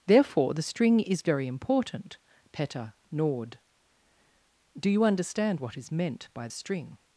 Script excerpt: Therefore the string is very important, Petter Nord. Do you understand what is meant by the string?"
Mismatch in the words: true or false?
true